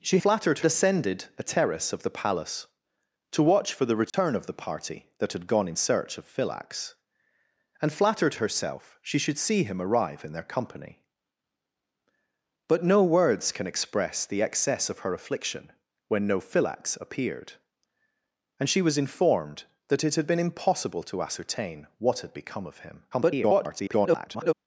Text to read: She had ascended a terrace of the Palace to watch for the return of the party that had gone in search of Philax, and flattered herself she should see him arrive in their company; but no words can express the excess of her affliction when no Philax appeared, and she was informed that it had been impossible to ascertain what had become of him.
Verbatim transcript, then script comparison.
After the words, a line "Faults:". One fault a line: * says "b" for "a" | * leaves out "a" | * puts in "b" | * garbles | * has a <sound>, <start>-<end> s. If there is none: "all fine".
She flattered ascended a terrace of the Palace to watch for the return of the party that had gone in search of Philax, and flattered herself she should see him arrive in their company; but no words can express the excess of her affliction when no Philax appeared, and she was informed that it had been impossible to ascertain what had become of him. [garbled]
Faults:
* says "flattered" for "had"
* has a dropout, 4.1-4.1 s
* garbles